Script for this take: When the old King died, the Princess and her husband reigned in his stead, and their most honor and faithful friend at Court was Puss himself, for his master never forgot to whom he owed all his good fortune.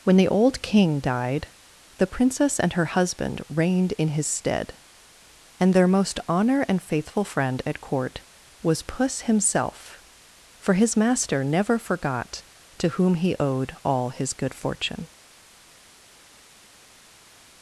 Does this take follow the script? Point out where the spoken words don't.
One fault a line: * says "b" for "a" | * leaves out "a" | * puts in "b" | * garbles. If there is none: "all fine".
all fine